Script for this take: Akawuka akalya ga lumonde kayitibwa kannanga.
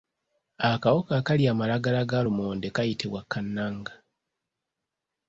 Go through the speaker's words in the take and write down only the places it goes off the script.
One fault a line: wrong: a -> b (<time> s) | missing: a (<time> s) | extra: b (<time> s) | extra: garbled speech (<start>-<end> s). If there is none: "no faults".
extra: amalagala (1.5 s)